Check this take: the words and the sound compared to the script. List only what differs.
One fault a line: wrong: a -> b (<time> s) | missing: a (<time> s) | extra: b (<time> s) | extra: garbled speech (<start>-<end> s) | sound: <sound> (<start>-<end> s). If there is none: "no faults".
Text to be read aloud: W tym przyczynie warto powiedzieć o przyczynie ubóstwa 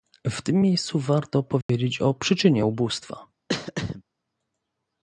wrong: przyczynie -> miejscu (0.6 s)
sound: dropout (1.6-1.7 s)
sound: throat clearing (3.5-4.0 s)